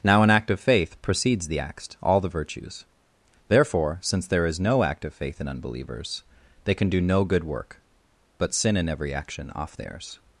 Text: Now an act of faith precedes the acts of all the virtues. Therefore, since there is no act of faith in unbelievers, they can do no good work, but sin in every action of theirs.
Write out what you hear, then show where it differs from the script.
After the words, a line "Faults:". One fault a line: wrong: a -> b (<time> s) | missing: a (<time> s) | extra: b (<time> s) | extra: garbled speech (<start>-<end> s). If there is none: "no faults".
Now an act of faith precedes the acts all the virtues. Therefore, since there is no act of faith in unbelievers, they can do no good work, but sin in every action off theirs.
Faults:
missing: of (1.9 s)
wrong: of -> off (9.5 s)